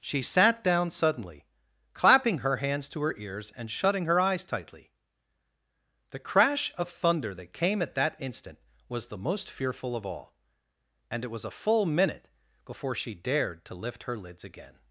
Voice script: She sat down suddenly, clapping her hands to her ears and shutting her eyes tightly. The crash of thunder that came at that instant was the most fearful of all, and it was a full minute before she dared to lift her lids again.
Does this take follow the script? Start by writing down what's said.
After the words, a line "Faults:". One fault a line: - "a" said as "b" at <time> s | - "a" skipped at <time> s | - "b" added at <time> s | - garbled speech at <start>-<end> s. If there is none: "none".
She sat down suddenly, clapping her hands to her ears and shutting her eyes tightly. The crash of thunder that came at that instant was the most fearful of all, and it was a full minute before she dared to lift her lids again.
Faults:
none